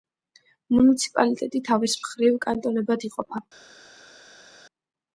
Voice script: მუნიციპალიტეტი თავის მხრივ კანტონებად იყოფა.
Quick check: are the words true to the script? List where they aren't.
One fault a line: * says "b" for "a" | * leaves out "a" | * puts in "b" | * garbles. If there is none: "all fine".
all fine